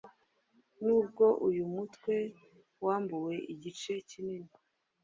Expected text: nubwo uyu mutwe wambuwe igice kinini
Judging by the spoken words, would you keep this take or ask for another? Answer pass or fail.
pass